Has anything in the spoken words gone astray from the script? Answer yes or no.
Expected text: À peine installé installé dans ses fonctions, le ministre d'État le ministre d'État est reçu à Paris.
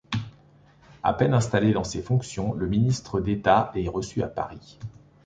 yes